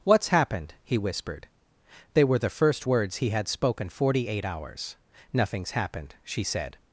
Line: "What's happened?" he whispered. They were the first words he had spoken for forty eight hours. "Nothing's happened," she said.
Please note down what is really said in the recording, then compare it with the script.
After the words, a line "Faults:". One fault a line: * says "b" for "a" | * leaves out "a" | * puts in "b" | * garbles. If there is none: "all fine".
"What's happened?" he whispered. They were the first words he had spoken forty eight hours. "Nothing's happened," she said.
Faults:
* leaves out "for"